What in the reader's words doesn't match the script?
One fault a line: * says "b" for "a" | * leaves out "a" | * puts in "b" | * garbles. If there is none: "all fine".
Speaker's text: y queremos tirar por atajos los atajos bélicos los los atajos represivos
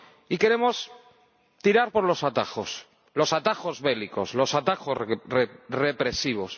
* puts in "los"
* leaves out "los"